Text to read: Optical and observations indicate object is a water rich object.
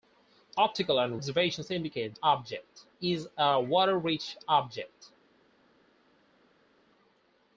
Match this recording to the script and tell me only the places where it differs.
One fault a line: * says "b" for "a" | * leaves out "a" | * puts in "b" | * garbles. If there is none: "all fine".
all fine